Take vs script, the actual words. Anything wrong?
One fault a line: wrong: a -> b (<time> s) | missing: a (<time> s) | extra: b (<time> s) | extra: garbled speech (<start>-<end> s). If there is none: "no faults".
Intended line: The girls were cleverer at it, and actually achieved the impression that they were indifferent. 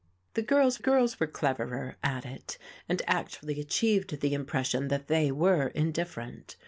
extra: girls (0.8 s)